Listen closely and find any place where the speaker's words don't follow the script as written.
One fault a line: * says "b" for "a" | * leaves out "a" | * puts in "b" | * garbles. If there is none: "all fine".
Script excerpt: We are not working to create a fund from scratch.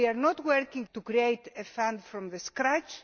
all fine